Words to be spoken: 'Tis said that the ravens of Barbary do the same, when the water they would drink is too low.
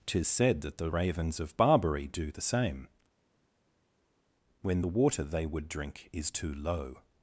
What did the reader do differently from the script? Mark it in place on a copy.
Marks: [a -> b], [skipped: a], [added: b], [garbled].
'Tis said that the ravens of Barbary do the same, when the water they would drink is too low.